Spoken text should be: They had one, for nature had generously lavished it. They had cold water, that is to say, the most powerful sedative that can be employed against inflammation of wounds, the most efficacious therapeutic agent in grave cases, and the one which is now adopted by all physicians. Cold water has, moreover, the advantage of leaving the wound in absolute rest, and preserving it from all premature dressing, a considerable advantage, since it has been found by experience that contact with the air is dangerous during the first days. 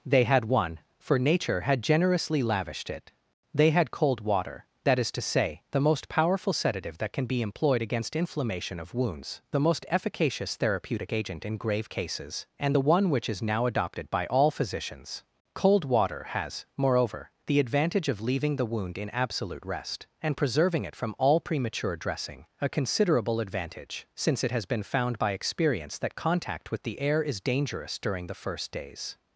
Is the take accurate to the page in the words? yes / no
yes